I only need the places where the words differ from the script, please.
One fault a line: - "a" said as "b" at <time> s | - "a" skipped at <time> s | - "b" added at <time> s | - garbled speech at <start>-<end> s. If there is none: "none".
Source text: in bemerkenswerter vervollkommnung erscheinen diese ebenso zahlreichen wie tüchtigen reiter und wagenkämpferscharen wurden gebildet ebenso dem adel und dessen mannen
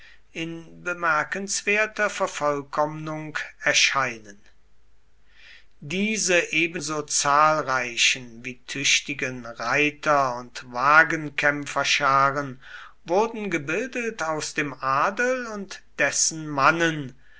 - "ebenso" said as "aus" at 14.2 s